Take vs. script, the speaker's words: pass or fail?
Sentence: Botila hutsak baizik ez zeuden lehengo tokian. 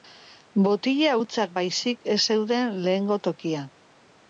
pass